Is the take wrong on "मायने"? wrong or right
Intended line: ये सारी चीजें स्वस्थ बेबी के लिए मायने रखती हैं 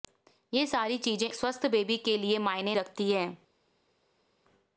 right